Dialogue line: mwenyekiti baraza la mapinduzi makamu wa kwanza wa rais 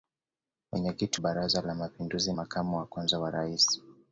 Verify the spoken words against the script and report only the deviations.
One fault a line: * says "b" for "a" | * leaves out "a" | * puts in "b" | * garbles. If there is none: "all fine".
all fine